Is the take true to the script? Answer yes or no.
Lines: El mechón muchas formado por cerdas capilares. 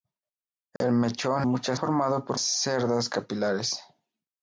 yes